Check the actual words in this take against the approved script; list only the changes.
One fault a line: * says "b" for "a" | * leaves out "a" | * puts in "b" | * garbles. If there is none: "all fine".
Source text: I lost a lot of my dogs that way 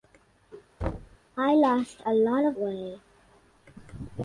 * leaves out "my dogs that"